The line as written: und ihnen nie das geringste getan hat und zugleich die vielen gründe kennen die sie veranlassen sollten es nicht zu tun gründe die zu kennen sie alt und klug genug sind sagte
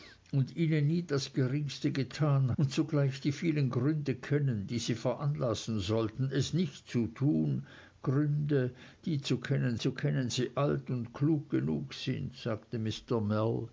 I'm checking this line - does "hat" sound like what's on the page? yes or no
no